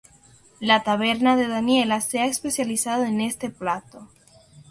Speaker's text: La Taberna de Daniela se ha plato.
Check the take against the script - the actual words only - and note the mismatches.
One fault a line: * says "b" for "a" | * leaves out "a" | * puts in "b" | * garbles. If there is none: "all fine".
* puts in "especializado en este"